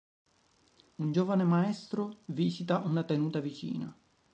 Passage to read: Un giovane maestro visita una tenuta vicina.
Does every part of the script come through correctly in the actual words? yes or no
yes